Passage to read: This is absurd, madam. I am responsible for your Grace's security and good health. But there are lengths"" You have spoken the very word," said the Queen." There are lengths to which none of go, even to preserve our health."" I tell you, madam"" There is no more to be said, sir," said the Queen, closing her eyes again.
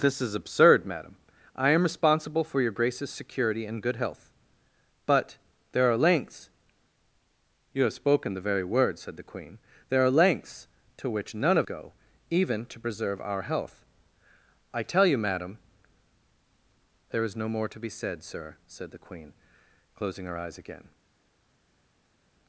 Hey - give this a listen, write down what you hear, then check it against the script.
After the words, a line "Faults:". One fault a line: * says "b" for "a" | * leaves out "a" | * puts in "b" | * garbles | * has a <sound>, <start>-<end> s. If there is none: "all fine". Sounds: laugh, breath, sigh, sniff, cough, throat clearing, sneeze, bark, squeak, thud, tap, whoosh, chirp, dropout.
This is absurd, madam. I am responsible for your Grace's security and good health. But there are lengths"" You have spoken the very word," said the Queen." There are lengths to which none of go, even to preserve our health."" I tell you, madam"" There is no more to be said, sir," said the Queen, closing her eyes again.
Faults:
all fine